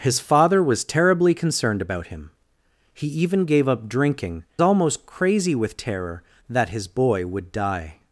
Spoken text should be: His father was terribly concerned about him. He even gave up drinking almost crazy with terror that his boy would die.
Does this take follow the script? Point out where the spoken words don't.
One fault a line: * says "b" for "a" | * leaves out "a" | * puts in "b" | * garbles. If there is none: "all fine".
all fine